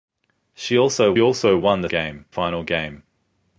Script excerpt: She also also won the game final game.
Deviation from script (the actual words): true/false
false